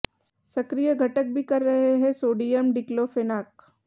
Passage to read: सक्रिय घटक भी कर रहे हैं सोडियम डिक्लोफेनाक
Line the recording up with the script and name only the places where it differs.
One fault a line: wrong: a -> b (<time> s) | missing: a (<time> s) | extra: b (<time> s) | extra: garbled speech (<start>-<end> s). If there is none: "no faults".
no faults